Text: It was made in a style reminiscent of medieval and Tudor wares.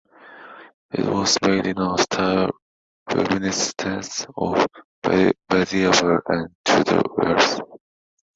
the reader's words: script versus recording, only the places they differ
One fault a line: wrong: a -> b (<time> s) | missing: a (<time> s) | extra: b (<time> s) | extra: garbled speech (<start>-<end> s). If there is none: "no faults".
no faults